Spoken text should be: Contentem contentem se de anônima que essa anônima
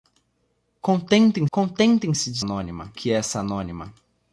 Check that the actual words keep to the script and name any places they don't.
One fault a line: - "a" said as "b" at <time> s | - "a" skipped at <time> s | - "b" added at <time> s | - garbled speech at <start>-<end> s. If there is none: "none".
none